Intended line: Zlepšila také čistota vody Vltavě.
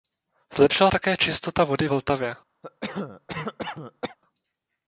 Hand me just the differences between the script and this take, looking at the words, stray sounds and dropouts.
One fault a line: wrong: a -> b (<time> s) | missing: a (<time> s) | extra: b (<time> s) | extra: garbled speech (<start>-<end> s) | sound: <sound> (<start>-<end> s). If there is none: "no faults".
sound: cough (2.6-4.2 s)